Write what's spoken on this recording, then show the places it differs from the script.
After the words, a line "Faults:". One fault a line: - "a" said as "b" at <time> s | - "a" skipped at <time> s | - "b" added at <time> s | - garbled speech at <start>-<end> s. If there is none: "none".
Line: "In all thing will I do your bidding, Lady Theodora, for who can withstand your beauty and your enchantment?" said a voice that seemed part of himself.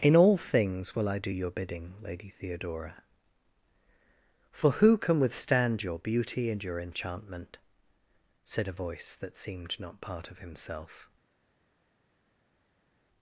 "In all things will I do your bidding, Lady Theodora, for who can withstand your beauty and your enchantment?" said a voice that seemed not part of himself.
Faults:
- "thing" said as "things" at 0.3 s
- "not" added at 9.8 s